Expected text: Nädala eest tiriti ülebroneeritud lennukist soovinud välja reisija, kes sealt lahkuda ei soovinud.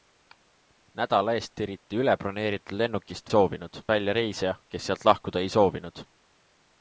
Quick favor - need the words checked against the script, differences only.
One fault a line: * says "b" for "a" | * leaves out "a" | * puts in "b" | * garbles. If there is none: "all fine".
all fine